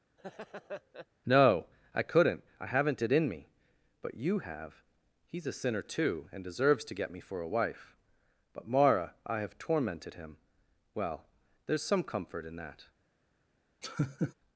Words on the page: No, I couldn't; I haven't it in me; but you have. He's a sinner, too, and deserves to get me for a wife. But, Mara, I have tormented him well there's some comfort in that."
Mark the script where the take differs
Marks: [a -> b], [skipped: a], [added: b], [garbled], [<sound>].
[laugh] No, I couldn't; I haven't it in me; but you have. He's a sinner, too, and deserves to get me for a wife. But, Mara, I have tormented him well there's some comfort in that." [laugh]